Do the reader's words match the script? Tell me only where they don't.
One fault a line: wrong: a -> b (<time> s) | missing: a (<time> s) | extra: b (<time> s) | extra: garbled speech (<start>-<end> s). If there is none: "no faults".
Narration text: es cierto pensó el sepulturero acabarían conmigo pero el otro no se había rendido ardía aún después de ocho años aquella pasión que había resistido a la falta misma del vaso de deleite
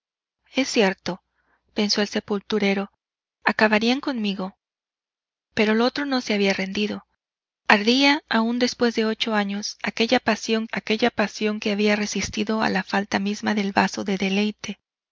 extra: aquella pasión (10.7 s)